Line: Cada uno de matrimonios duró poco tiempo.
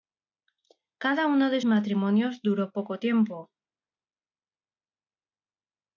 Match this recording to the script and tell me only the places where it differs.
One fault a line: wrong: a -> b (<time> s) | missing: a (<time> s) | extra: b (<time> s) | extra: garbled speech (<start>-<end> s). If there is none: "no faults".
no faults